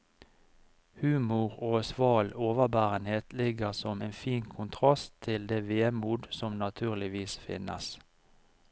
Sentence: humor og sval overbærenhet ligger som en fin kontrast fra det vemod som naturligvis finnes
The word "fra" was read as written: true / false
false